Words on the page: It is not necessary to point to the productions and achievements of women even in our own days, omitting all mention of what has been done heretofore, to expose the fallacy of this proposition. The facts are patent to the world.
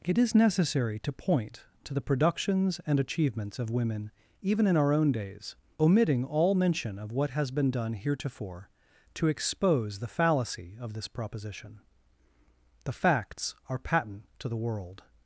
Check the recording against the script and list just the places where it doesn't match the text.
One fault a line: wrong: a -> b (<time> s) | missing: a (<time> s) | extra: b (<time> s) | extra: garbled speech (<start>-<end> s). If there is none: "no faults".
missing: not (0.3 s)